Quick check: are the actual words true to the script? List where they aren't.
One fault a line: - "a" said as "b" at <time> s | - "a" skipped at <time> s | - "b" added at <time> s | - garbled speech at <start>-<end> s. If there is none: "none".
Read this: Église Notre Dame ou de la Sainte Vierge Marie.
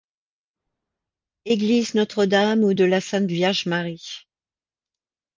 none